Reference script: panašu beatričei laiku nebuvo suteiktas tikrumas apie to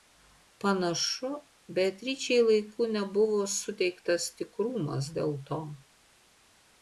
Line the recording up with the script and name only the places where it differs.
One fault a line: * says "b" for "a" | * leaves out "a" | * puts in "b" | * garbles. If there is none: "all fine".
* says "dėl" for "apie"